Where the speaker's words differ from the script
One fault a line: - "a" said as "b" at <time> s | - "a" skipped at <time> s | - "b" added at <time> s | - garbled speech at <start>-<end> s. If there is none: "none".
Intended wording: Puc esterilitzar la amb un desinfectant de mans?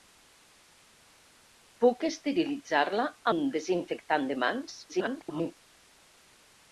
- "amb" skipped at 3.1 s
- garbled speech at 4.9-5.5 s